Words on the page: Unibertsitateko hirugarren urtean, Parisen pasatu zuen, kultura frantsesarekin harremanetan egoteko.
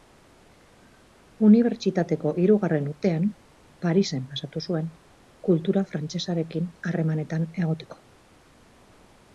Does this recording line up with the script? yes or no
yes